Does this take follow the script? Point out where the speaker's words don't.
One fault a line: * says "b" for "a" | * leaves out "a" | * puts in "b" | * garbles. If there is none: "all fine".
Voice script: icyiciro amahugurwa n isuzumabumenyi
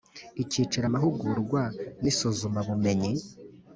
all fine